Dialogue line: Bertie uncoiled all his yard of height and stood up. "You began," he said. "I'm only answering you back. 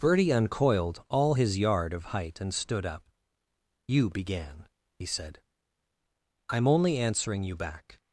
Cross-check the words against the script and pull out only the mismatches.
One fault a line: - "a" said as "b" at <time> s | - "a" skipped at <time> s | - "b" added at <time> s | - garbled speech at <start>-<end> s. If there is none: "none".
none